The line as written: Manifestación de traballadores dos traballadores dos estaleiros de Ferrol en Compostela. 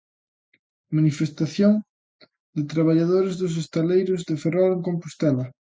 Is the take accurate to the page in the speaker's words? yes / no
no